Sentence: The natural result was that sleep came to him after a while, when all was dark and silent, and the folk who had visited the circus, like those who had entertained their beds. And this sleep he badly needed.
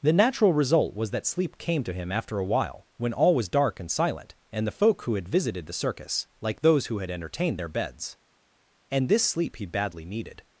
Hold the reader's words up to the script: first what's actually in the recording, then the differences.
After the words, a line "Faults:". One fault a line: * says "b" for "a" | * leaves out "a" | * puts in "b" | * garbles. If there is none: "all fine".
The natural result was that sleep came to him after a while, when all was dark and silent, and the folk who had visited the circus, like those who had entertained their beds. And this sleep he badly needed.
Faults:
all fine